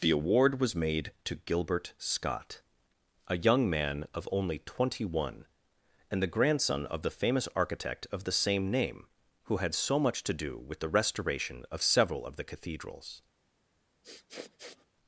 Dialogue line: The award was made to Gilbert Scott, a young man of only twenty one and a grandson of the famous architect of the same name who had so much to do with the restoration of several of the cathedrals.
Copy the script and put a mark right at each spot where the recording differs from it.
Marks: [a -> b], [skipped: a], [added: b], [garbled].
The award was made to Gilbert Scott, a young man of only twenty one and [a -> the] grandson of the famous architect of the same name who had so much to do with the restoration of several of the cathedrals.